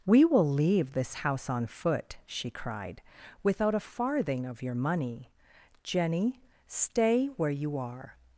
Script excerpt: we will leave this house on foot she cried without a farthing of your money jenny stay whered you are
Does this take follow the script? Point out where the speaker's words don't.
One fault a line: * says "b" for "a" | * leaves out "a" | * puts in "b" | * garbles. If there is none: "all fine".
* says "where" for "whered"